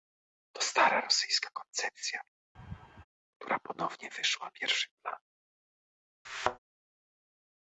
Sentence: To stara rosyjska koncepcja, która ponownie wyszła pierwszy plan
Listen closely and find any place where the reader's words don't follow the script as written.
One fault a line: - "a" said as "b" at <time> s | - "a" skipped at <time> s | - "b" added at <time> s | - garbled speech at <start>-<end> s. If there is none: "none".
none